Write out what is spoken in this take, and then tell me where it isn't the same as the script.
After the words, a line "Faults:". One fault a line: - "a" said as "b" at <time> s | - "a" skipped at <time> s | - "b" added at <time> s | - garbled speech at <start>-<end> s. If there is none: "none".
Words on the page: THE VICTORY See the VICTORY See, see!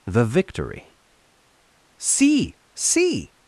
THE VICTORY See, see!
Faults:
- "the VICTORY See" skipped at 2.5 s